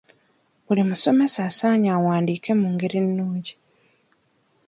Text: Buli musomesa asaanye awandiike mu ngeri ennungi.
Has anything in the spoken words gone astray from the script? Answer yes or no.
no